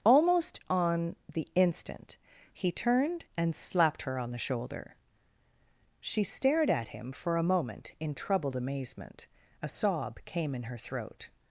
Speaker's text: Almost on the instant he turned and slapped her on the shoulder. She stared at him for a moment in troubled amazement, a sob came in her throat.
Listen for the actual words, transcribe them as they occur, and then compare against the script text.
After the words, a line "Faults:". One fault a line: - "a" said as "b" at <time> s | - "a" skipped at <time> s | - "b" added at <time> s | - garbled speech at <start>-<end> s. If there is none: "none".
Almost on the instant he turned and slapped her on the shoulder. She stared at him for a moment in troubled amazement, a sob came in her throat.
Faults:
none